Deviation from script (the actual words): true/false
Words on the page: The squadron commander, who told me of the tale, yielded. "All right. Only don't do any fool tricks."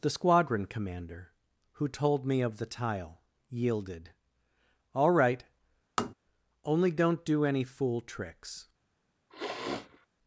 true